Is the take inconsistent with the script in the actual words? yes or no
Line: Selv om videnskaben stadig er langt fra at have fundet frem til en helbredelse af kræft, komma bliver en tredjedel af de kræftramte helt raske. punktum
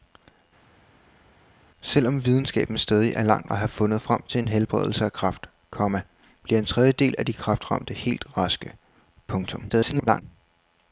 yes